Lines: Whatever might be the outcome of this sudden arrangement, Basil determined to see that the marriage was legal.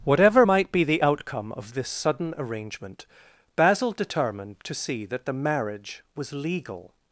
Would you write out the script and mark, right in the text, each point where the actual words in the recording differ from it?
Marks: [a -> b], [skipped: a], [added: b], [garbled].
Whatever might be the outcome of this sudden arrangement, Basil determined to see that the marriage was legal.